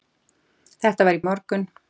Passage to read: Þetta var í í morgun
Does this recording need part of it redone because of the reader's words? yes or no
no